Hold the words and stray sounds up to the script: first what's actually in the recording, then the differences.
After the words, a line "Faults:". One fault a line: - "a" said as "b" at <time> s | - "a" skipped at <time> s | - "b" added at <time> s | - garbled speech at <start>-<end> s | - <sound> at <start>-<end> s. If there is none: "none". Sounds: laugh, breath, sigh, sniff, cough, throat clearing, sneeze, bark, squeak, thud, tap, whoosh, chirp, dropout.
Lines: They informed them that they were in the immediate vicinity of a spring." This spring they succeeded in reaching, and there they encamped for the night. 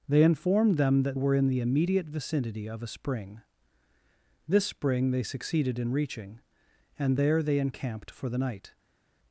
They informed them that were in the immediate vicinity of a spring." This spring they succeeded in reaching, and there they encamped for the night.
Faults:
- "they" skipped at 1.2 s